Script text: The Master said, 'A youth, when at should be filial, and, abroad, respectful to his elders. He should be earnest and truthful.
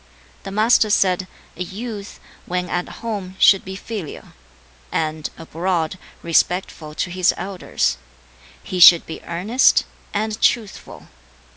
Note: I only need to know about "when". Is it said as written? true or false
true